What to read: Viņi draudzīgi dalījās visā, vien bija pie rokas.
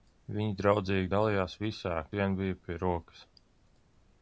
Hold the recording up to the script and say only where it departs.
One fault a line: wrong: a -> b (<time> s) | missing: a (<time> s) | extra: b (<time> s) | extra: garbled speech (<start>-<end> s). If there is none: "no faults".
no faults